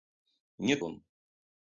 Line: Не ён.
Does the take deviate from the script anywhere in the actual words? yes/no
no